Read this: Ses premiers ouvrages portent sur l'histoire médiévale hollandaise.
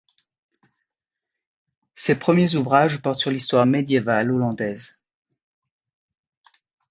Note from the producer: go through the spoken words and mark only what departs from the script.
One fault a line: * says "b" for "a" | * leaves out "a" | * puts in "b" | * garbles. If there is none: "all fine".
all fine